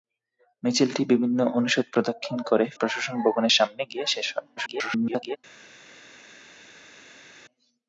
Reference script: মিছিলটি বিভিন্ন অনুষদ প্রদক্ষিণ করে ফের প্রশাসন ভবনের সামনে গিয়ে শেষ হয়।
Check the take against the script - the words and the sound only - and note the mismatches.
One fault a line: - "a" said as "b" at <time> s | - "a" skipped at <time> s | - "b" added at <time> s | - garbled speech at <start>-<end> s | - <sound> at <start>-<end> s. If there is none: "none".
- "ফের" skipped at 2.7 s
- garbled speech at 4.6-5.4 s